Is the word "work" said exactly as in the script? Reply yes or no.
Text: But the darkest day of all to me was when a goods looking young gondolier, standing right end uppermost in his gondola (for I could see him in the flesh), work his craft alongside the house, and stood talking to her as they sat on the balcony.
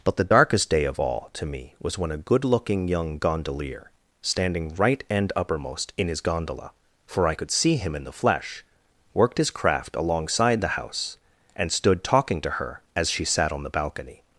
no